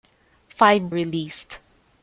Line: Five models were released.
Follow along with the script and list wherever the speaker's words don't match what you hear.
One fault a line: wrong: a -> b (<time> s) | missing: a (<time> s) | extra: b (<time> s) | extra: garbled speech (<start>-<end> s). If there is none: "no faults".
missing: models were (0.9 s)